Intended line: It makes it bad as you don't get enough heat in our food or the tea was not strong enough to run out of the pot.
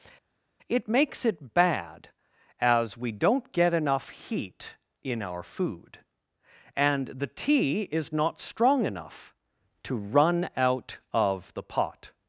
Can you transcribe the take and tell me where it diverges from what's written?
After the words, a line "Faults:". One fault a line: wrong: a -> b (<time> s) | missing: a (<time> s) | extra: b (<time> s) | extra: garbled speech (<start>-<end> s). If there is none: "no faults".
It makes it bad as we don't get enough heat in our food and the tea is not strong enough to run out of the pot.
Faults:
wrong: you -> we (3.0 s)
wrong: or -> and (6.8 s)
wrong: was -> is (7.8 s)